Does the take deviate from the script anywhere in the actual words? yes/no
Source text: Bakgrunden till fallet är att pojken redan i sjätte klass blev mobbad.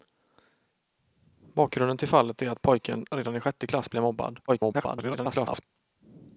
yes